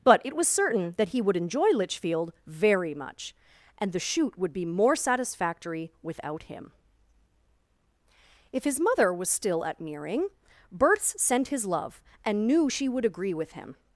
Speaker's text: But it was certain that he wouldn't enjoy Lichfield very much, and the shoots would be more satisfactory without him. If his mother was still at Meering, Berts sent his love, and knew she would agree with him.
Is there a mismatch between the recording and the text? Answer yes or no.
yes